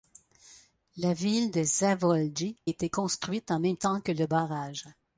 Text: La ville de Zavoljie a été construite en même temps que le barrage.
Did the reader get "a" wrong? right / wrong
wrong